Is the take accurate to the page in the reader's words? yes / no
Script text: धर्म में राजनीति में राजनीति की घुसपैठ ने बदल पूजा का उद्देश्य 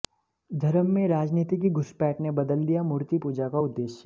no